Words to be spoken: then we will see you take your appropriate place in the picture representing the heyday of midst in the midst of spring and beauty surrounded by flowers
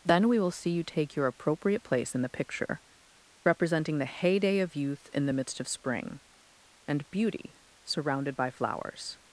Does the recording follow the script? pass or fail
fail